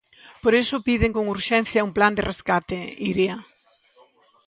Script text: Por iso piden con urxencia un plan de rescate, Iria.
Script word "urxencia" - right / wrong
right